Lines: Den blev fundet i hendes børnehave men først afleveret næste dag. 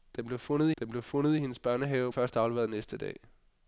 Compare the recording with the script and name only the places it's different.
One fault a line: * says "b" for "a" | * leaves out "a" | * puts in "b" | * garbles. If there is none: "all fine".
* puts in "den blev fundet"
* leaves out "men"